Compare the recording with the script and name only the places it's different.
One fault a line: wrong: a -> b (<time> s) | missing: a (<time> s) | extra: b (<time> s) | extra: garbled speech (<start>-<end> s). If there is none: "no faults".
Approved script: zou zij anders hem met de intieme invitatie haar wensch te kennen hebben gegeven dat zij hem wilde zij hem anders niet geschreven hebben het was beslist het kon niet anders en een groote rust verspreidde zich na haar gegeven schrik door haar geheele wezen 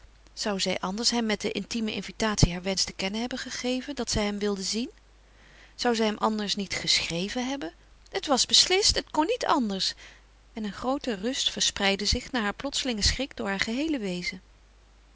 extra: zien zou (4.6 s)
wrong: gegeven -> plotselingen (12.6 s)